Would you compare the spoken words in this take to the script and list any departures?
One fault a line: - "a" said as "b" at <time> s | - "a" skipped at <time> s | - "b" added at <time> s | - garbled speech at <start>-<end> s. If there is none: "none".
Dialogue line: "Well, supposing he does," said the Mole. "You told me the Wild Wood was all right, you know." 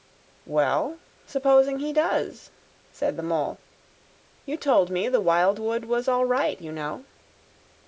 none